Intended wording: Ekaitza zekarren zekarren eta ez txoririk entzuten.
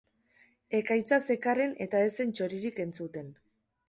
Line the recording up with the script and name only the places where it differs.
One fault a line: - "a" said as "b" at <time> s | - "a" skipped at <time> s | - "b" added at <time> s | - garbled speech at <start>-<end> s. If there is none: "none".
- "zekarren" skipped at 1.8 s
- "zen" added at 2.2 s